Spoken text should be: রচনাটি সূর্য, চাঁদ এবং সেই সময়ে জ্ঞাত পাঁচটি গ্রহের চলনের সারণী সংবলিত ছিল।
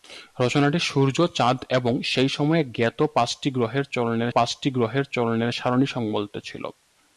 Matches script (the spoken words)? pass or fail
fail